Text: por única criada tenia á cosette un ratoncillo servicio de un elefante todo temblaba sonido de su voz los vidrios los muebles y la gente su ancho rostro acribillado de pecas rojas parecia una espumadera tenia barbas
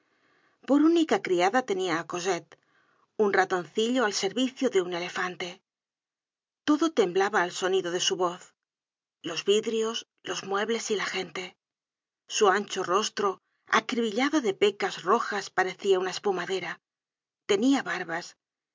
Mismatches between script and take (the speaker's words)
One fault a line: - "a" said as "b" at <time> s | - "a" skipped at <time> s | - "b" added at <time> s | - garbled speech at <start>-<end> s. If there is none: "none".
- "al" added at 4.0 s
- "al" added at 7.4 s